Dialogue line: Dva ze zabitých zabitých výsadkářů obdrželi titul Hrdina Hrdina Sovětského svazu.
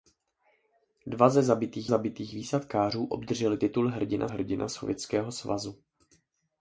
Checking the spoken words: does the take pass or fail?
pass